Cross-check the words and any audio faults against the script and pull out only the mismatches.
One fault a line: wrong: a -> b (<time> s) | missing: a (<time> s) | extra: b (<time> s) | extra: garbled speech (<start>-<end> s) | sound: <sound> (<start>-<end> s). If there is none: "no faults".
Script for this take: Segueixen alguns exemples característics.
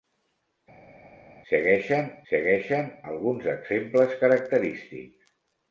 extra: segueixen (2.3 s)